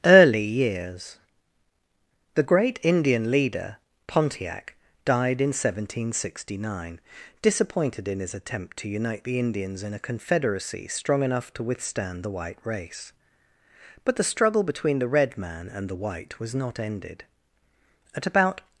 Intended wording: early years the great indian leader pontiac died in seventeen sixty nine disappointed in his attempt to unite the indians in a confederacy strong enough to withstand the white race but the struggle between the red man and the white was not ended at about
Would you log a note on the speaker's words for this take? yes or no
no